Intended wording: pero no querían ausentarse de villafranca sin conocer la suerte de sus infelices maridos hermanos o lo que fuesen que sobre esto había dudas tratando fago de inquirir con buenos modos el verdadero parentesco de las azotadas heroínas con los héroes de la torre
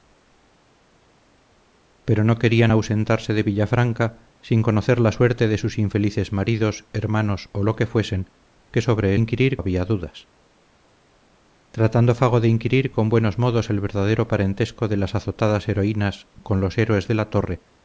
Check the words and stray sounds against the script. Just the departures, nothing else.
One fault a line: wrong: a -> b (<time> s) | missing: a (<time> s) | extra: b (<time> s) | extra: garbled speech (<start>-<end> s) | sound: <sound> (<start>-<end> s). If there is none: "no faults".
wrong: esto -> inquirir (9.1 s)